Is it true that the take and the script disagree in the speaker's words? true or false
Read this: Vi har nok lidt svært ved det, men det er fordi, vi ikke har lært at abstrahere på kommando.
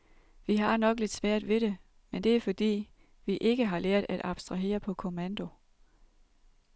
false